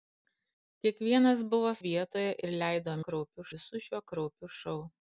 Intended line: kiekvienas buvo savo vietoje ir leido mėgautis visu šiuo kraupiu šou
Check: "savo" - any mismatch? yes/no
yes